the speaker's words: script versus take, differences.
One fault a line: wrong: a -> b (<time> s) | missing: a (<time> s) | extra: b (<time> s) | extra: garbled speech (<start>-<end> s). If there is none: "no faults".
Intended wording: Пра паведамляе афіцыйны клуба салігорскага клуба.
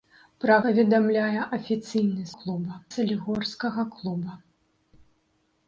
no faults